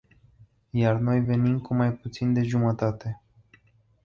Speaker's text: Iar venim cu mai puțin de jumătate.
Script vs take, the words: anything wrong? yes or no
yes